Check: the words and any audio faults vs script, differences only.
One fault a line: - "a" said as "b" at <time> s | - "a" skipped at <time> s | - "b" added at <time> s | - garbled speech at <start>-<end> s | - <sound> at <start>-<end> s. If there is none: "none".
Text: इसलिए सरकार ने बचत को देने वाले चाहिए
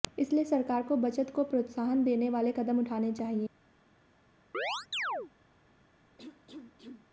- "ने" said as "को" at 0.8 s
- "प्रोत्साहन" added at 1.4 s
- "कदम उठाने" added at 2.5 s
- chirp at 4.5-5.3 s
- cough at 6.2-7.1 s